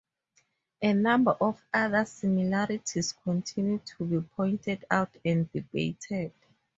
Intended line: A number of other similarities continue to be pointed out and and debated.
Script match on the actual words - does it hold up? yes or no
no